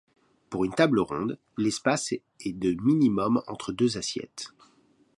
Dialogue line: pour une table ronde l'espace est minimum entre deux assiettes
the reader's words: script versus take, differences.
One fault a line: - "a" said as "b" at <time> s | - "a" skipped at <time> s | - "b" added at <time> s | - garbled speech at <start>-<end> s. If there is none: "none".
- "de" added at 2.5 s